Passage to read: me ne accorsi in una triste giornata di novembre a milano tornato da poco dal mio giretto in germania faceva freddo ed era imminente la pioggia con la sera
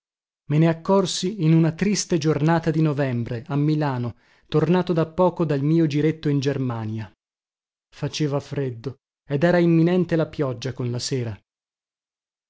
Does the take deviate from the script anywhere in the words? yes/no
no